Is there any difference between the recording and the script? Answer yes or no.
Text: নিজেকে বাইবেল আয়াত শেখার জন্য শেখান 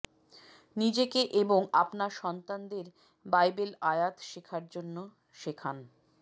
yes